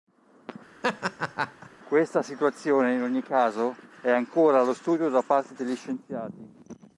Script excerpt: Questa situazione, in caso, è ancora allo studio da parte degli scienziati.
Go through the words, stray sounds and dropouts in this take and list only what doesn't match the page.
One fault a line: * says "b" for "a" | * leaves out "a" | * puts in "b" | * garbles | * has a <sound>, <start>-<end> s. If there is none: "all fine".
* has a laugh, 0.8-1.7 s
* puts in "ogni"